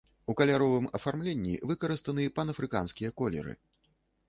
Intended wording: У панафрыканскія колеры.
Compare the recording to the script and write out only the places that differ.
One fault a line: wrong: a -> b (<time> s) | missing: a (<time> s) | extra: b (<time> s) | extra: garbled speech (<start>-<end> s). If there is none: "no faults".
extra: каляровым афармленні выкарыстаны (0.4 s)